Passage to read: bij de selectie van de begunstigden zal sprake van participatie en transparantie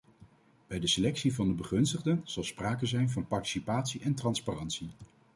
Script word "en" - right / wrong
right